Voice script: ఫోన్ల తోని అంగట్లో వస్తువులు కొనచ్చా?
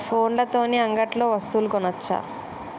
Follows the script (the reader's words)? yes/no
yes